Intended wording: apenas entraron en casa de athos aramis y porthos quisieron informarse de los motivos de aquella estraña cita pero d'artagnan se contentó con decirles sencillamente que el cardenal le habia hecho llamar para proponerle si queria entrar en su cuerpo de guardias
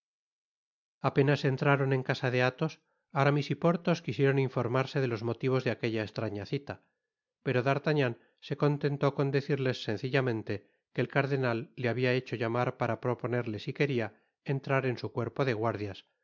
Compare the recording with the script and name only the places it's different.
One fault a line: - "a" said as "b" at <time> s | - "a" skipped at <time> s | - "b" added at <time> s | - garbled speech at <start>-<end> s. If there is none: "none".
none